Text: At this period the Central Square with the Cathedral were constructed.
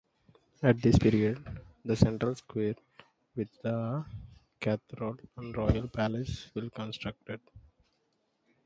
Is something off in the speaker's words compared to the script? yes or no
yes